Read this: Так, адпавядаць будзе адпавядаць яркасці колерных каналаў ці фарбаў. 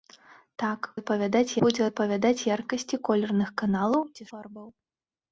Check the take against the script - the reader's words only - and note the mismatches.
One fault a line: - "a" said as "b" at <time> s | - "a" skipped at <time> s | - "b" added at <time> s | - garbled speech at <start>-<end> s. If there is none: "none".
none